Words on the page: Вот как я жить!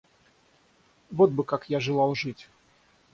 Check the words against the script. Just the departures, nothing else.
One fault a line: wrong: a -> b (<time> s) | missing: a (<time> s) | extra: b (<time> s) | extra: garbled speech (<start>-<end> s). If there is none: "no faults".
extra: бы (1.3 s)
extra: желал (1.8 s)